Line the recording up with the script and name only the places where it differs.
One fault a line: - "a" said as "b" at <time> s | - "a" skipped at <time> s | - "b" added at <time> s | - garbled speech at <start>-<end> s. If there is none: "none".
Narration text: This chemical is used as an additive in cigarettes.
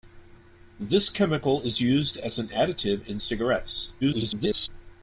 - garbled speech at 4.0-4.7 s